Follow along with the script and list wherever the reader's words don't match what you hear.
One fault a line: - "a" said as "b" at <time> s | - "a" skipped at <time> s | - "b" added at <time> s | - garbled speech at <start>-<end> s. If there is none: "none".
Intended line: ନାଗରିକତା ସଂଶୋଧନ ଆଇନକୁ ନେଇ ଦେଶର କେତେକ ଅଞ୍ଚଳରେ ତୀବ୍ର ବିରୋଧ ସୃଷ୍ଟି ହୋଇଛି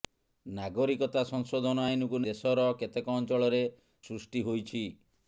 - "ନେଇ" skipped at 2.2 s
- "ତୀବ୍ର ବିରୋଧ" skipped at 3.6 s